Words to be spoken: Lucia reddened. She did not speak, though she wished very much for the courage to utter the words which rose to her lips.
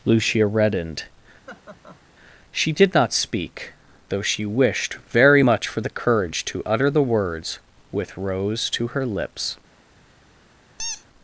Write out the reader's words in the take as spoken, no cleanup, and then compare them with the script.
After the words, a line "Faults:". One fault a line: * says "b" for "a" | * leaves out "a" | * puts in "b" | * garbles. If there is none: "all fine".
Lucia reddened. She did not speak, though she wished very much for the courage to utter the words with rose to her lips.
Faults:
* says "with" for "which"